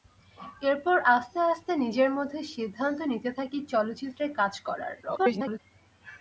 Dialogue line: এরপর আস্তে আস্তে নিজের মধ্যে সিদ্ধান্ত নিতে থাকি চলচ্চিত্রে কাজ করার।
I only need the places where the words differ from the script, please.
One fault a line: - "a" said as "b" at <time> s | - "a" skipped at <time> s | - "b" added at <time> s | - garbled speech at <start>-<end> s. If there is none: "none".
- garbled speech at 5.0-5.6 s